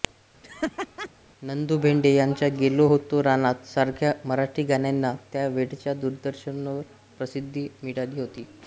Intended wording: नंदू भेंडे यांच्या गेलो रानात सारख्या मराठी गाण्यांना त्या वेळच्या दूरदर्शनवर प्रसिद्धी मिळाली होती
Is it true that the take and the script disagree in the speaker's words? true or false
true